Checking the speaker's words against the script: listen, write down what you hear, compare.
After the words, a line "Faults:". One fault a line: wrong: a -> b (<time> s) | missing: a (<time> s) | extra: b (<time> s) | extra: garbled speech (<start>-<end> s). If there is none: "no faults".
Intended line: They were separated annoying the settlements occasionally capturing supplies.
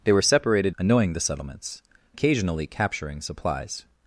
They were separated annoying the settlements occasionally capturing supplies.
Faults:
no faults